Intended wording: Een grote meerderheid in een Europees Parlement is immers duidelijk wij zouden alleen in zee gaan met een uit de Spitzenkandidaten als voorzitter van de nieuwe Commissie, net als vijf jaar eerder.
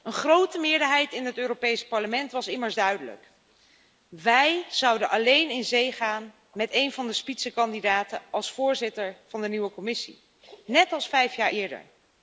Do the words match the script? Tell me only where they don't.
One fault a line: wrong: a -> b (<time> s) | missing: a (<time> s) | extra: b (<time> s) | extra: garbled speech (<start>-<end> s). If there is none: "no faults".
wrong: een -> het (1.2 s)
wrong: is -> was (2.3 s)
wrong: uit -> van (6.9 s)